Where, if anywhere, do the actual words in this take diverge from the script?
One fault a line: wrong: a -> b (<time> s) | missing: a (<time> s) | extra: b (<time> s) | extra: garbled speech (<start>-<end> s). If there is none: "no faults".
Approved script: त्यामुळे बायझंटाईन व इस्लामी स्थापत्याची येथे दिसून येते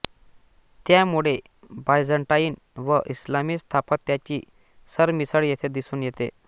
extra: सरमिसळ (4.9 s)